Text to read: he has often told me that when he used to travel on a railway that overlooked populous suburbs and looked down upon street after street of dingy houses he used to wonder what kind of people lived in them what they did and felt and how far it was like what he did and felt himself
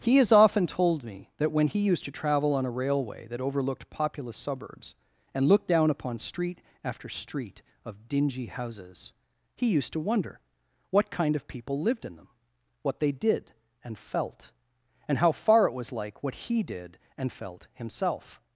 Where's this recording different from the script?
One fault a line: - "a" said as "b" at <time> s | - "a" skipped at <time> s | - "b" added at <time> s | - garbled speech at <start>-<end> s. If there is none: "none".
none